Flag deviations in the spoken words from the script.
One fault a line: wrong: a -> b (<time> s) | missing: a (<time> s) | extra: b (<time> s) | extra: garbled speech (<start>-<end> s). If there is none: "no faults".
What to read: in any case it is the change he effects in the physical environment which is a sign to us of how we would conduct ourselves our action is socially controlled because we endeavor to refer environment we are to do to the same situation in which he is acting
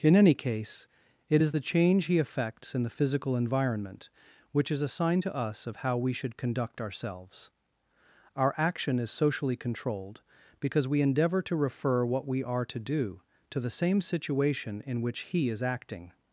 wrong: would -> should (6.1 s)
wrong: environment -> what (12.0 s)